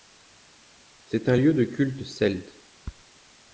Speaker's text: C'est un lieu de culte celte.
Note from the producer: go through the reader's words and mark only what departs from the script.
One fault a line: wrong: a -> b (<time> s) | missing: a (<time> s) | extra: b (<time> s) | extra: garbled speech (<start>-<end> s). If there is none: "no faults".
no faults